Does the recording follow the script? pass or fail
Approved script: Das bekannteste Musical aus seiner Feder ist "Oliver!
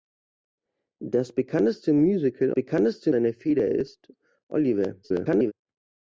fail